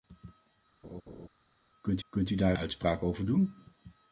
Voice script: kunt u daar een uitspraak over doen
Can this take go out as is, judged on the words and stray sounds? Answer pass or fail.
fail